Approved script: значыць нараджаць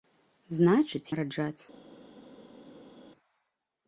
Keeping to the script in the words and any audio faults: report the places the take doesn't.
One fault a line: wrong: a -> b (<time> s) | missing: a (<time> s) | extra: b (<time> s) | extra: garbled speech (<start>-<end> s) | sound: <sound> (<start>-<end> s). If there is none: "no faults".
no faults